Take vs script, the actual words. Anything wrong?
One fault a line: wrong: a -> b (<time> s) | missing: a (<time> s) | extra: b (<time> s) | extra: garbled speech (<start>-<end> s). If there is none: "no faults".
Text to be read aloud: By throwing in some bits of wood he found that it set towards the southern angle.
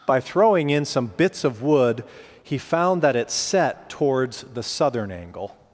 no faults